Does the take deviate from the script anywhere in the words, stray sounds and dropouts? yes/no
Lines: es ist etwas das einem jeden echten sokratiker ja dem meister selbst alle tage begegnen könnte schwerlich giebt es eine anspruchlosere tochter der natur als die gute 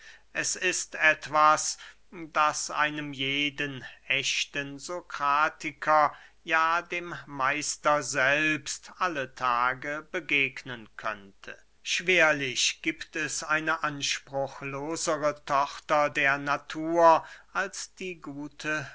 no